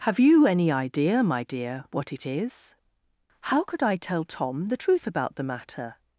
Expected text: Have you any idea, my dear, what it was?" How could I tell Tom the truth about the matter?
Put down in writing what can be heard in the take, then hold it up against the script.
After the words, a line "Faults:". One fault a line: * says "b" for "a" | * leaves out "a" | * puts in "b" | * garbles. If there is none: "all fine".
Have you any idea, my dear, what it is?" How could I tell Tom the truth about the matter?
Faults:
* says "is" for "was"